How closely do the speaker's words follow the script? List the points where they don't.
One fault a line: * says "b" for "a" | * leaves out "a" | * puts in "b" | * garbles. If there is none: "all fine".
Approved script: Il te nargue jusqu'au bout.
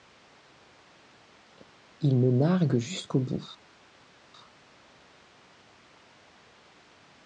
* says "me" for "te"